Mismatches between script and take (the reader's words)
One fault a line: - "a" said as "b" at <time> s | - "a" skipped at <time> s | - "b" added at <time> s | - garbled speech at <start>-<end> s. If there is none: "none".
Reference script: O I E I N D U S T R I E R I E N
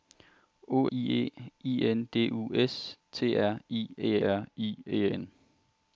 none